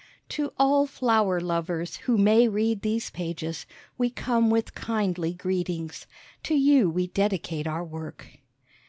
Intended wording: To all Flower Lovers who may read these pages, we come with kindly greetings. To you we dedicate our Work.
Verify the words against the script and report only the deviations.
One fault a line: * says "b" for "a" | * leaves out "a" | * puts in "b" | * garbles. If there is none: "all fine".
all fine